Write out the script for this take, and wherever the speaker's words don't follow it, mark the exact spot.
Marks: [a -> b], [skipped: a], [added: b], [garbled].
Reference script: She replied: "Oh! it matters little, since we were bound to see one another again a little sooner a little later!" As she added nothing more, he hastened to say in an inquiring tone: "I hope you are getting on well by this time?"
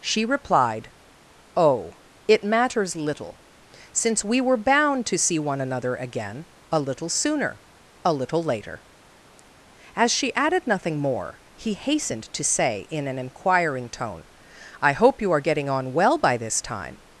She replied: "Oh! it matters little, since we were bound to see one another again a little sooner a little later!" As she added nothing more, he hastened to say in an inquiring tone: "I hope you are getting on well by this time?"